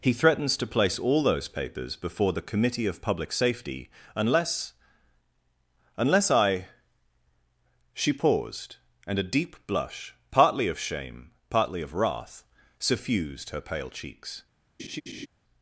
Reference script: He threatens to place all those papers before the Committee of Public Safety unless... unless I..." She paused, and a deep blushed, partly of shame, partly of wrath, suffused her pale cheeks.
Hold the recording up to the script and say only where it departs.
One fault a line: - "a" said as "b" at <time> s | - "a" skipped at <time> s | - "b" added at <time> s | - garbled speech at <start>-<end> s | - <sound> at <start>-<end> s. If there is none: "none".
- "blushed" said as "blush" at 9.7 s
- laugh at 14.8-15.3 s